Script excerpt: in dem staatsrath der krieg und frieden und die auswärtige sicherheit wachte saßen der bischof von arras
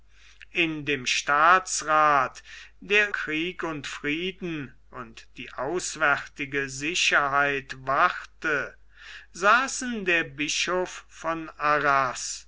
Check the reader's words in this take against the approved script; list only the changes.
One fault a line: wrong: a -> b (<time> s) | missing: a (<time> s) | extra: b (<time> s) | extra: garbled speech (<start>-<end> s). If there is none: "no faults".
no faults